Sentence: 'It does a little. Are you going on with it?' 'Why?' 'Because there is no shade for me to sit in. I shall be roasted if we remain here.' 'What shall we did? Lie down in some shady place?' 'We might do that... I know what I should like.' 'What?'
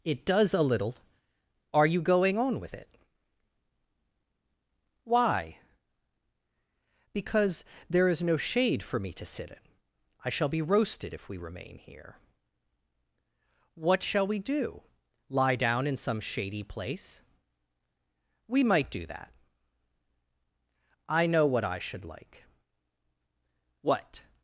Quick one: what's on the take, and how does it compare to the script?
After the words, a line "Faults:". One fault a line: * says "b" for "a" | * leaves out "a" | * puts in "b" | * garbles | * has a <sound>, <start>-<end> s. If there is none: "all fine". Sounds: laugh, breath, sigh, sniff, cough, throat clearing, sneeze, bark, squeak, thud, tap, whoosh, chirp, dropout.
'It does a little. Are you going on with it?' 'Why?' 'Because there is no shade for me to sit in. I shall be roasted if we remain here.' 'What shall we do? Lie down in some shady place?' 'We might do that... I know what I should like.' 'What?'
Faults:
* says "do" for "did"